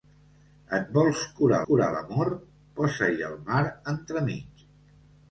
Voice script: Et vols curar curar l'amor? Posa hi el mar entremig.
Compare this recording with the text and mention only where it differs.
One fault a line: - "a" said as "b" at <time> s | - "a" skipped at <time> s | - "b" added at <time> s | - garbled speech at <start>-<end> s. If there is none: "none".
none